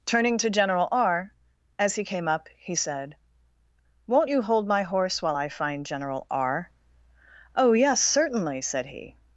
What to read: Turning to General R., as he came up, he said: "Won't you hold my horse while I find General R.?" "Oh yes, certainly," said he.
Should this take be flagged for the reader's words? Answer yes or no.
no